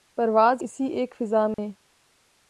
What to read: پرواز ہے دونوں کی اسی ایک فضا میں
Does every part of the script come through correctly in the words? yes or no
no